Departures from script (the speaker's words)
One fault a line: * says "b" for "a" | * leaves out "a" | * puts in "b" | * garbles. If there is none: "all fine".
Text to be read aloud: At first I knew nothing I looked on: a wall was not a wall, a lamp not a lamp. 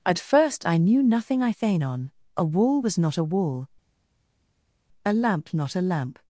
* says "thane" for "looked"